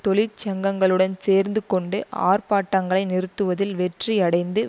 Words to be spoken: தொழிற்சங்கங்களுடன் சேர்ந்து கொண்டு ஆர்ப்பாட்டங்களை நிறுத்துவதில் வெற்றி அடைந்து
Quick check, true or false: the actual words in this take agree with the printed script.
true